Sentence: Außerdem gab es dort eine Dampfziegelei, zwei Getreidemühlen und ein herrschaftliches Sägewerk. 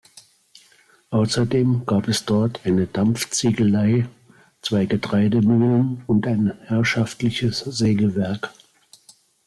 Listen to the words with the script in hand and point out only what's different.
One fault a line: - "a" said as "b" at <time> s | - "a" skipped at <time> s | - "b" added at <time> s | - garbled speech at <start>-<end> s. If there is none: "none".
none